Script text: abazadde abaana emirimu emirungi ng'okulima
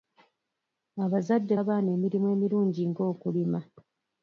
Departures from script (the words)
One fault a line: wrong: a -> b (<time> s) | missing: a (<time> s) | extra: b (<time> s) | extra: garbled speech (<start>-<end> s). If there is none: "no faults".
no faults